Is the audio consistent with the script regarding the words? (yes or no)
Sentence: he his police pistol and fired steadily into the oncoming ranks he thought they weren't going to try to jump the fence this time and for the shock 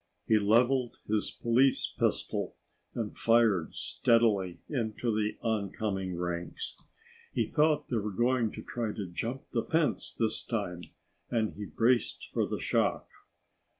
no